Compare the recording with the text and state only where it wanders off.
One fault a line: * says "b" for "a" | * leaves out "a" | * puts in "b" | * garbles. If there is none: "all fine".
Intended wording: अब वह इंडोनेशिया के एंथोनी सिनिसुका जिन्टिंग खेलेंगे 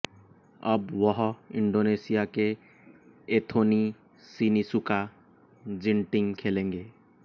all fine